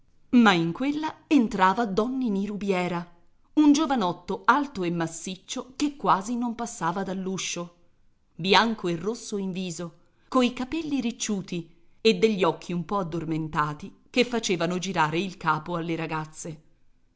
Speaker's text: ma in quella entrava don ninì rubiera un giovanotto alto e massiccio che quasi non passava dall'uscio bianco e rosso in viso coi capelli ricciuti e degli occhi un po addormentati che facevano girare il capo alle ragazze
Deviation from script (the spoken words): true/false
false